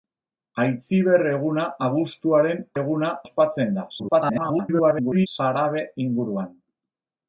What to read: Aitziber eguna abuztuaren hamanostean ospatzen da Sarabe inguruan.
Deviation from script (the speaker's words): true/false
true